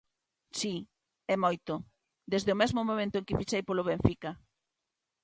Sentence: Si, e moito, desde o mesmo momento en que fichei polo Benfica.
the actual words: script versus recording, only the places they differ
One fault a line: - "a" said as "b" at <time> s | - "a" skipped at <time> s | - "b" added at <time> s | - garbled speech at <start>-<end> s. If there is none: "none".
none